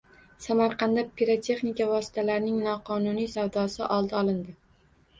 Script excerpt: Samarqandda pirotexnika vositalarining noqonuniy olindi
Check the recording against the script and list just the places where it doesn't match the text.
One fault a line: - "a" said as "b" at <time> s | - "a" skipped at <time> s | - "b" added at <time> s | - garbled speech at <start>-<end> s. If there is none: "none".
- "savdosi oldi" added at 3.3 s